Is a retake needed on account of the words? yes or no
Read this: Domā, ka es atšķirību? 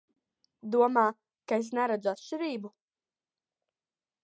yes